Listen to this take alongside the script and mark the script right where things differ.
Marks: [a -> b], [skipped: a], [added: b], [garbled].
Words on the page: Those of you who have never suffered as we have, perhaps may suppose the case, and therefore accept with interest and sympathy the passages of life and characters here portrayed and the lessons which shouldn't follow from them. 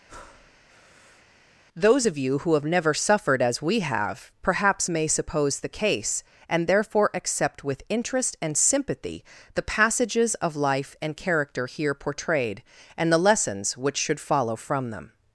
Those of you who have never suffered as we have, perhaps may suppose the case, and therefore accept with interest and sympathy the passages of life and [characters -> character] here portrayed and the lessons which [shouldn't -> should] follow from them.